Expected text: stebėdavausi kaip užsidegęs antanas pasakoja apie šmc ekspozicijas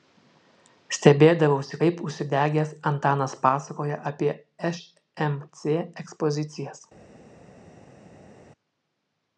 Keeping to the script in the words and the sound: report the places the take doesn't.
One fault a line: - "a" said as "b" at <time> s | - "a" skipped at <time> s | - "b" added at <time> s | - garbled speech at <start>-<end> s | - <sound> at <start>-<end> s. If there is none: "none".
none